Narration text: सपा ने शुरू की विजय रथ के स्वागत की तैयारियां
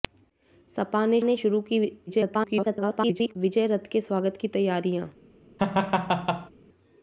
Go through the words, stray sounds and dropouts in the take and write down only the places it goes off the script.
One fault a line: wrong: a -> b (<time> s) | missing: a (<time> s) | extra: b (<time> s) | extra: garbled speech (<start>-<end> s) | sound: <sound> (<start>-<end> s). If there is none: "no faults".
extra: ने (1.2 s)
extra: garbled speech (2.1-3.4 s)
sound: laugh (5.6-6.5 s)